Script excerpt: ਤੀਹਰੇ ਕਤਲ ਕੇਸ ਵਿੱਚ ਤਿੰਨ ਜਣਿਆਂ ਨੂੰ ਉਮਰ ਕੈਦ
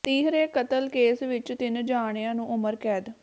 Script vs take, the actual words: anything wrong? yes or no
no